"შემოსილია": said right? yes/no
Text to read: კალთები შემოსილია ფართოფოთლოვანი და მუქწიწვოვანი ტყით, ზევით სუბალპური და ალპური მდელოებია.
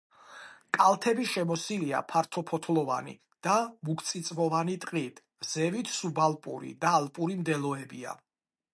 yes